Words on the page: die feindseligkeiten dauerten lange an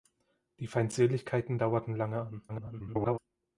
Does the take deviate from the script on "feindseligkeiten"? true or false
false